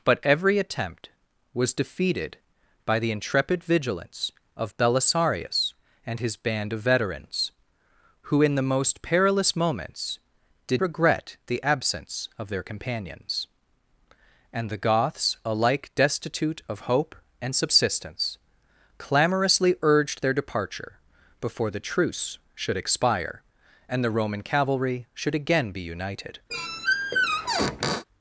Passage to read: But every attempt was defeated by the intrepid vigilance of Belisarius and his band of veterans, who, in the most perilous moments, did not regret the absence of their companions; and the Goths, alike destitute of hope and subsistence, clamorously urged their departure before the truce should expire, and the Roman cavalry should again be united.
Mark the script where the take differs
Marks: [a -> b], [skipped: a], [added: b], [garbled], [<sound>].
But every attempt was defeated by the intrepid vigilance of Belisarius and his band of veterans, who, in the most perilous moments, did [skipped: not] regret the absence of their companions; and the Goths, alike destitute of hope and subsistence, clamorously urged their departure before the truce should expire, and the Roman cavalry should again be united. [squeak]